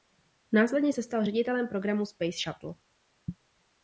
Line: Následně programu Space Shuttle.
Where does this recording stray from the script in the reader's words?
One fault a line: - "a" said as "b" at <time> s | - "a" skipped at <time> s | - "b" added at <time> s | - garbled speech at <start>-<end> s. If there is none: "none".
- "se stal ředitelem" added at 0.9 s